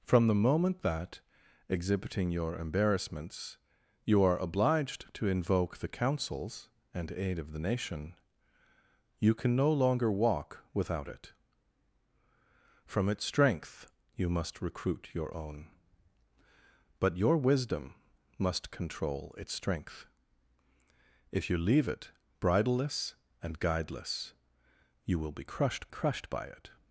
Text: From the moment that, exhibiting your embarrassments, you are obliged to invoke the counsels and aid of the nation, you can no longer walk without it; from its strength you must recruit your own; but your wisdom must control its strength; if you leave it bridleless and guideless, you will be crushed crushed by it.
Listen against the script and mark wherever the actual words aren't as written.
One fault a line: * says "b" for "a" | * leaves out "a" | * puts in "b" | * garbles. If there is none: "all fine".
all fine